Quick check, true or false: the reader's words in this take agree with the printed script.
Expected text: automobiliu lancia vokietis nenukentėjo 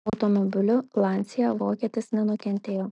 true